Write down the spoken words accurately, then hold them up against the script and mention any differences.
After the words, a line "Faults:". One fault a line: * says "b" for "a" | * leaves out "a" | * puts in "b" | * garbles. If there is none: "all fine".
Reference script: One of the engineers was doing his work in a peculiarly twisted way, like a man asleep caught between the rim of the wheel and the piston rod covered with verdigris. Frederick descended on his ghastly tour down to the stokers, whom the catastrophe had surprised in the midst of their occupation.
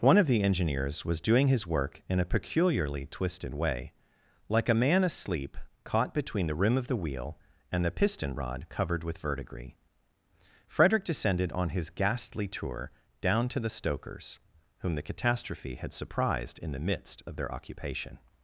One of the engineers was doing his work in a peculiarly twisted way, like a man asleep caught between the rim of the wheel and the piston rod covered with verdigris. Frederick descended on his ghastly tour down to the stokers, whom the catastrophe had surprised in the midst of their occupation.
Faults:
all fine